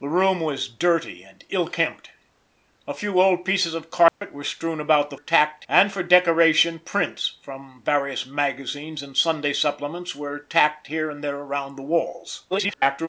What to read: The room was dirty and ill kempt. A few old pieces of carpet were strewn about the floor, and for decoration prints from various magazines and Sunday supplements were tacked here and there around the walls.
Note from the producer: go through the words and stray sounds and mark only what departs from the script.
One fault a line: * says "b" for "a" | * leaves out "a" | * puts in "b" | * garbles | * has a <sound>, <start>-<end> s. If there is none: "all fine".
* has a dropout, 4.1-4.2 s
* says "tacked" for "floor"
* garbles